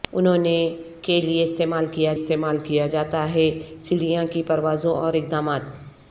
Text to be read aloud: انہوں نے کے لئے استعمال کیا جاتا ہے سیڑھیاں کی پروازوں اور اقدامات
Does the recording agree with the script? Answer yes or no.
no